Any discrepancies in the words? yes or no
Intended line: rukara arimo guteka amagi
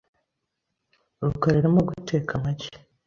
no